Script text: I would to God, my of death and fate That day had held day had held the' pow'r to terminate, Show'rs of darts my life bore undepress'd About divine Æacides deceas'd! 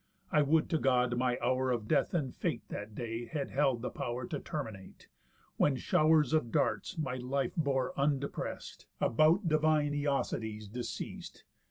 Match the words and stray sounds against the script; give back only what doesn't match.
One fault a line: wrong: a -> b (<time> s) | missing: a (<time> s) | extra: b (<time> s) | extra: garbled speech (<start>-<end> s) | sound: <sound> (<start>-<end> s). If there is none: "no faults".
extra: hour (1.4 s)
missing: day had held (3.8 s)
extra: When (5.6 s)